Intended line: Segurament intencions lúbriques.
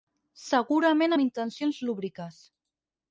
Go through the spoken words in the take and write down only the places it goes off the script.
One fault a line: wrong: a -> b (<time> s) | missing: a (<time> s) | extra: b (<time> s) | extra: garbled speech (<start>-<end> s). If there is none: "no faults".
extra: amb (1.1 s)